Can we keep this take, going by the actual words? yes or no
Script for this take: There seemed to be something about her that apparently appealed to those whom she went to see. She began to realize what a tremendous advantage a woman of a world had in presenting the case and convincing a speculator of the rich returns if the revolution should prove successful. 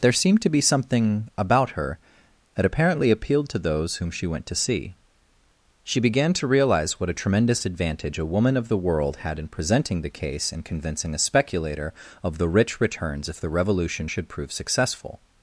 no